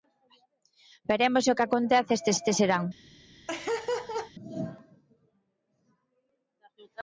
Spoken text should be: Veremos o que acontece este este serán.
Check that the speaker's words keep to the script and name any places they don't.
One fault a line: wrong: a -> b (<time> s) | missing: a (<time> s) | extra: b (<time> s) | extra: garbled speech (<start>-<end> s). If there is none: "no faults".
no faults